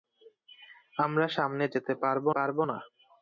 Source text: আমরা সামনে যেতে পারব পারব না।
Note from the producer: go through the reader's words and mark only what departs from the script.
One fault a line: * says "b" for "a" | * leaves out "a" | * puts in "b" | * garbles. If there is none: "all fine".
all fine